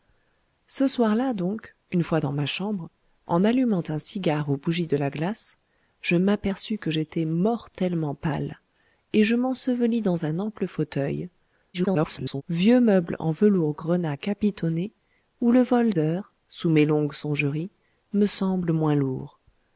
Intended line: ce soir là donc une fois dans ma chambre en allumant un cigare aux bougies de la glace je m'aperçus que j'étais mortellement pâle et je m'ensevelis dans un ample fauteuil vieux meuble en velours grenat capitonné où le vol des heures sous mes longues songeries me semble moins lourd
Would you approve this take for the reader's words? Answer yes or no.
no